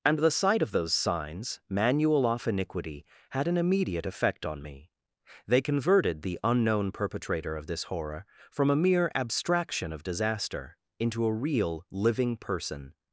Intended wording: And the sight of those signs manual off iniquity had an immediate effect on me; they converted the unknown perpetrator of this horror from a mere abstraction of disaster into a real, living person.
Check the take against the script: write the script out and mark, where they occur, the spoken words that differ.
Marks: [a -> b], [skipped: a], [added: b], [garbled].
And the sight of those signs manual off iniquity had an immediate effect on me; they converted the unknown perpetrator of this horror from a mere abstraction of disaster into a real, living person.